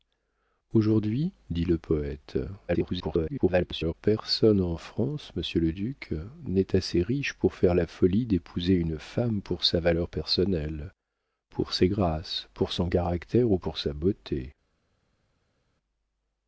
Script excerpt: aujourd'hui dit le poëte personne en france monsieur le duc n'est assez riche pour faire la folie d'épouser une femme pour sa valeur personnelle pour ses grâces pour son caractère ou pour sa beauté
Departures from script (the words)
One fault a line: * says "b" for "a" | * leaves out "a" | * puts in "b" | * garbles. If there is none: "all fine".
* garbles